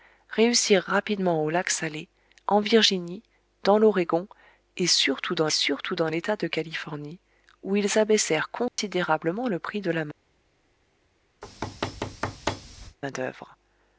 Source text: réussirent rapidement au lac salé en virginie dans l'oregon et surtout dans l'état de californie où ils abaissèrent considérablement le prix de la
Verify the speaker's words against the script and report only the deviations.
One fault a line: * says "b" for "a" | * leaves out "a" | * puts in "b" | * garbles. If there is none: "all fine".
* puts in "surtout dans"